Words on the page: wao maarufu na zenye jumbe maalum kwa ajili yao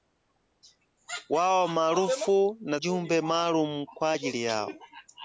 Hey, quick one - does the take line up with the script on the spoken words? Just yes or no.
no